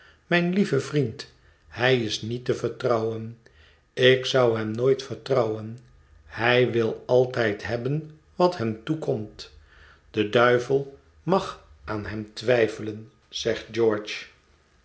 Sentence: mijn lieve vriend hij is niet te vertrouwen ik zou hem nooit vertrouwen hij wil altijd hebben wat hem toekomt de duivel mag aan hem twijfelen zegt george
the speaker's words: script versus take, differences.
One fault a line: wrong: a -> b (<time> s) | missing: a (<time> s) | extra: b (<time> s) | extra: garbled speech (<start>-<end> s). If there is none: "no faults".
no faults